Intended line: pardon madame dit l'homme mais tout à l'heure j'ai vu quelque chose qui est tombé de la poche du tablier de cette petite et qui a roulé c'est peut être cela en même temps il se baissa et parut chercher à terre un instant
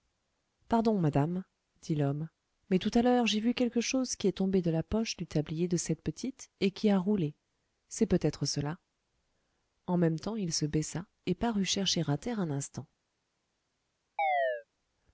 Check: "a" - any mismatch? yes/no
no